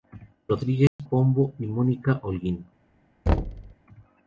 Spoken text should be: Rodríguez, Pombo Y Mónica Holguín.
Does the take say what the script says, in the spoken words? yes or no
yes